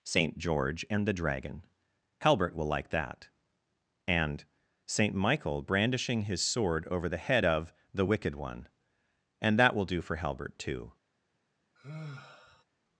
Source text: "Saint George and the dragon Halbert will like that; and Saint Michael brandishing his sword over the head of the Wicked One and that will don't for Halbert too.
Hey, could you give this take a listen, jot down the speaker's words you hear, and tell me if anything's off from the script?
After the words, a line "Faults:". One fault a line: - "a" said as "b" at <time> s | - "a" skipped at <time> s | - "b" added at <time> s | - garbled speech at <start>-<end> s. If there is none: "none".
"Saint George and the dragon Halbert will like that; and Saint Michael brandishing his sword over the head of the Wicked One and that will do for Halbert too.
Faults:
- "don't" said as "do" at 9.9 s